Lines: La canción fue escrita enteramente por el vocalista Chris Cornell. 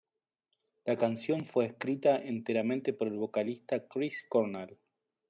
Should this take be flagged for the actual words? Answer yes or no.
no